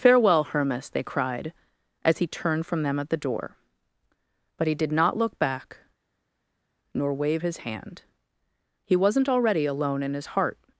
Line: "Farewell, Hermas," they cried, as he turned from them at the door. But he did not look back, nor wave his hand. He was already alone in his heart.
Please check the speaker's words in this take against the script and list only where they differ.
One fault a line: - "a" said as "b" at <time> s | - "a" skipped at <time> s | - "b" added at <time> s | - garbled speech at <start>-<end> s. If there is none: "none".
- "was" said as "wasn't" at 9.0 s